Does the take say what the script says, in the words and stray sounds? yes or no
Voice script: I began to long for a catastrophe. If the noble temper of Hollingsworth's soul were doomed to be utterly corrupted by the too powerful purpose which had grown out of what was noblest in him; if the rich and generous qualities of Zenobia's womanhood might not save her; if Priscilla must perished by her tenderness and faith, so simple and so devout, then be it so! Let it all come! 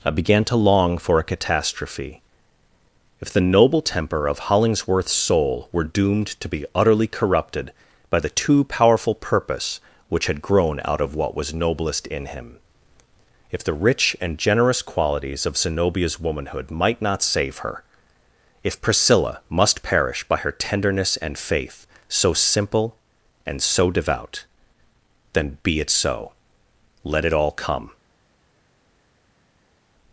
no